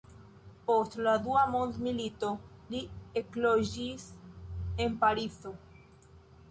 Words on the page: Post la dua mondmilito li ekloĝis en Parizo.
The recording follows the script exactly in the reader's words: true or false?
true